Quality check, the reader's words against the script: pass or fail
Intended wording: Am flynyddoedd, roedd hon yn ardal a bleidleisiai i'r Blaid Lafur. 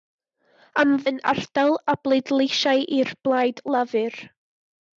fail